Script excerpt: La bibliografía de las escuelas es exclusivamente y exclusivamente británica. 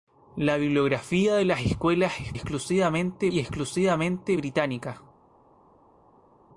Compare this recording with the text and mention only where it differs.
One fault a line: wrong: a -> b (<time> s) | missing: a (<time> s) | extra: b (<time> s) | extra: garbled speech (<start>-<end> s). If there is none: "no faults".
no faults